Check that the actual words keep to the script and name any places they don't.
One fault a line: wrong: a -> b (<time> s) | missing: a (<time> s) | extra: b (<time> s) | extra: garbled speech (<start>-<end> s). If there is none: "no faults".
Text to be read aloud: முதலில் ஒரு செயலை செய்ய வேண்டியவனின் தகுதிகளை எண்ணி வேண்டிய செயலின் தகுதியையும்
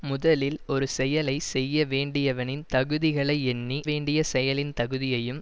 no faults